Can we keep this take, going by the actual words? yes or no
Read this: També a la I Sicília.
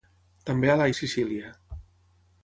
yes